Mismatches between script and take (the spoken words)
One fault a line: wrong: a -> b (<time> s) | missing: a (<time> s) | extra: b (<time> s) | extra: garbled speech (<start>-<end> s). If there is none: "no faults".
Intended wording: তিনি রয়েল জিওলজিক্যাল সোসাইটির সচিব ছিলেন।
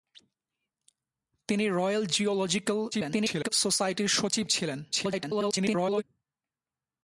extra: garbled speech (2.9-3.5 s)
extra: garbled speech (4.9-6.0 s)